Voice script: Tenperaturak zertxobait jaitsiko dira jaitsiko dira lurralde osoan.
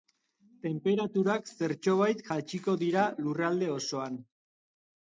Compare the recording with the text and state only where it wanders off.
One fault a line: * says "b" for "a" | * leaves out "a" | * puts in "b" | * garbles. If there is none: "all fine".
* leaves out "jaitsiko dira"